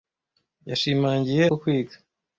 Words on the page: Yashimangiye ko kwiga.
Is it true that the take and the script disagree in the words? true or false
false